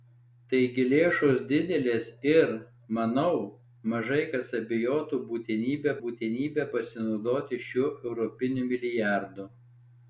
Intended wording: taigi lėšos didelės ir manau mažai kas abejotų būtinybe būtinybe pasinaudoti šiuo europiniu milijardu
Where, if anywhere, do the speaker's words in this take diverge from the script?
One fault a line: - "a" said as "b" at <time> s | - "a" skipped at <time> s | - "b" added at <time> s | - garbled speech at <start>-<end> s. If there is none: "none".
none